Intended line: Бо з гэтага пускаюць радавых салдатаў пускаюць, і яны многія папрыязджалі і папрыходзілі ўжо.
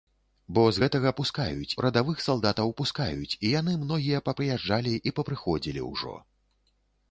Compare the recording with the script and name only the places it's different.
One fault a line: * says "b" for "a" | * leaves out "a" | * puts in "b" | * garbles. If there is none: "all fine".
all fine